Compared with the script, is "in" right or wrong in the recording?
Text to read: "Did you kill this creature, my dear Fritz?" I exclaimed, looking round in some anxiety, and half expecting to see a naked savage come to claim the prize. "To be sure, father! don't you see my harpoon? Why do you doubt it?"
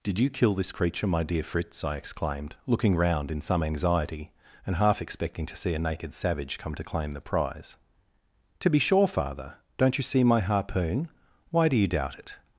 right